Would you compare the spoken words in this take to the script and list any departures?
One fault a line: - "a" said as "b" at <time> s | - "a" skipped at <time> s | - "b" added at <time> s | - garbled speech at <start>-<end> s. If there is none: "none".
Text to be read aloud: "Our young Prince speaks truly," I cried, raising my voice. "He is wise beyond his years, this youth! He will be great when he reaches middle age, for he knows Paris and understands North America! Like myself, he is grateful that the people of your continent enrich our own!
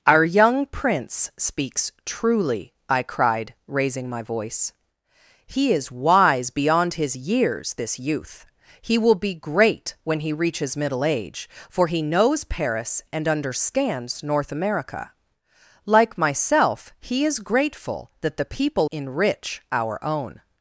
- "of your continent" skipped at 18.9 s